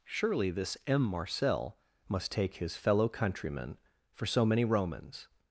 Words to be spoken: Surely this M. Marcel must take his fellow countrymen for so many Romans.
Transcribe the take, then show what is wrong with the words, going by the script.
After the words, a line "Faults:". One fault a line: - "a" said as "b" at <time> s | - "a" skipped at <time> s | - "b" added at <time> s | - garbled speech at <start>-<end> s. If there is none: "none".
Surely this M. Marcel must take his fellow countrymen for so many Romans.
Faults:
none